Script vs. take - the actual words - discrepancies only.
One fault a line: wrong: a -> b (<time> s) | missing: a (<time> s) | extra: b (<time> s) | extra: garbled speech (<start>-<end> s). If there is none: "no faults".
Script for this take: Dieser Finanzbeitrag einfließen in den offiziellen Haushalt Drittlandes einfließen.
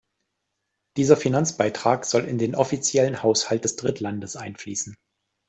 wrong: einfließen -> soll (2.0 s)
extra: des (3.6 s)